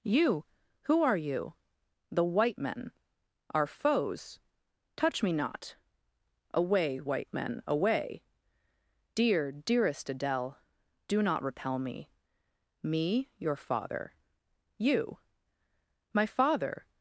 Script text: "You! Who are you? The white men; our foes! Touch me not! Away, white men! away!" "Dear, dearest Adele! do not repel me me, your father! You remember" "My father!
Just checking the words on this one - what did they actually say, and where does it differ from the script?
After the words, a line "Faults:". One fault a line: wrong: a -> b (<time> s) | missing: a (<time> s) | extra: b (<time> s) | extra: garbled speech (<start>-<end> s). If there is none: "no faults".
"You! Who are you? The white men; our foes! Touch me not! Away, white men! away!" "Dear, dearest Adele! do not repel me me, your father! You" "My father!
Faults:
missing: remember (15.2 s)